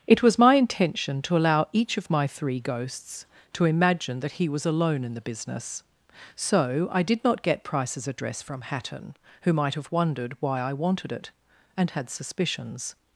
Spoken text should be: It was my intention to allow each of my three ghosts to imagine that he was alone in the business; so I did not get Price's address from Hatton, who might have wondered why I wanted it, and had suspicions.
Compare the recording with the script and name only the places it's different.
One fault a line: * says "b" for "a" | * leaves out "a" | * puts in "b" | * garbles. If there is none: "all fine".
all fine